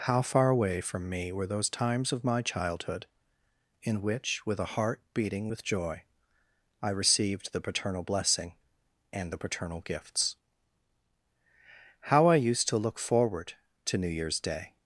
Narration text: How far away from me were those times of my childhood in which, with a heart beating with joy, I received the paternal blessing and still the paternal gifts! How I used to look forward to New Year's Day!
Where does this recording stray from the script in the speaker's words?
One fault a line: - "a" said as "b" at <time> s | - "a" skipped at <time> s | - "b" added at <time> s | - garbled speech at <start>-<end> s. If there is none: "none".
- "still" skipped at 9.3 s